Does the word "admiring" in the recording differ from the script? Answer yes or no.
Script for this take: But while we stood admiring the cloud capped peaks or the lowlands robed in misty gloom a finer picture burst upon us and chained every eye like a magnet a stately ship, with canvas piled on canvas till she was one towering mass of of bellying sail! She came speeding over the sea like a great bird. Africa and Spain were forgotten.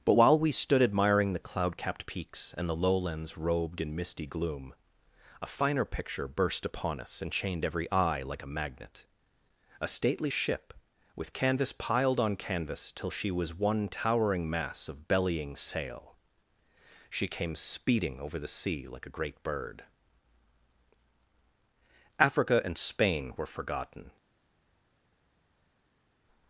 no